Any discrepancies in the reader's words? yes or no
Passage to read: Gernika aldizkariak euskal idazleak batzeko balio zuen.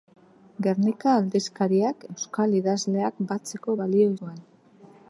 no